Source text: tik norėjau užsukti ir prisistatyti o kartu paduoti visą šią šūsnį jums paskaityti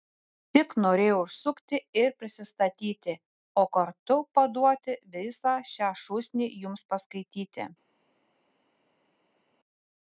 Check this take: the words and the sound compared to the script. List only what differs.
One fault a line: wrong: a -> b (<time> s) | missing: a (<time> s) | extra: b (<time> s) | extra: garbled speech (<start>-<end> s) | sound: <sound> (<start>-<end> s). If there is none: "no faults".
no faults